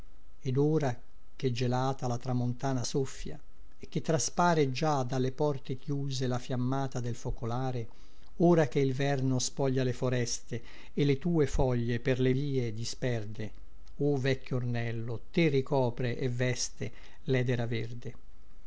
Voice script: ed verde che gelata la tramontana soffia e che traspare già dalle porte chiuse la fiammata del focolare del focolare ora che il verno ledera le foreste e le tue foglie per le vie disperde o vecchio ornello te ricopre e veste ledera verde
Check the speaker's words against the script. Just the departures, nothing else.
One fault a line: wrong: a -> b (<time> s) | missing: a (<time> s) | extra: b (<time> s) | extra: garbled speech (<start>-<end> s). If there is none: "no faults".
wrong: verde -> ora (0.6 s)
missing: del focolare (7.9 s)
wrong: ledera -> spoglia (9.4 s)